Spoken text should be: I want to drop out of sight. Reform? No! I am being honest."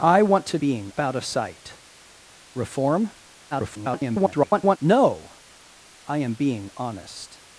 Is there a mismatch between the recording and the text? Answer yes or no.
yes